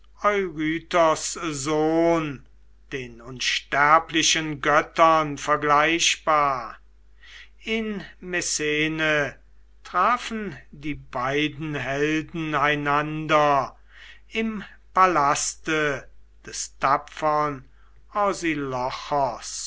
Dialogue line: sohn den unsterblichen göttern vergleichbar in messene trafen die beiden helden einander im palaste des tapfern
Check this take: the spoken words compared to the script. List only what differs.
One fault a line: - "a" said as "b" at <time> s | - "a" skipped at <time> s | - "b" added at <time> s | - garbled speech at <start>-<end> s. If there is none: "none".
none